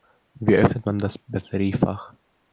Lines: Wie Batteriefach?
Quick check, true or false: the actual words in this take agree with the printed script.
false